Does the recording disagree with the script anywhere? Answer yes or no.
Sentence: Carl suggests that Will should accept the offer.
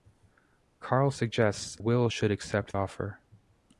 yes